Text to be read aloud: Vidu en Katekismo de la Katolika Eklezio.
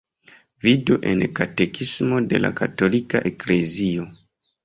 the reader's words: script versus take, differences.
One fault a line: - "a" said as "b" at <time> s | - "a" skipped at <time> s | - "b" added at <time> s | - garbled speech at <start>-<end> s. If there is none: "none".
none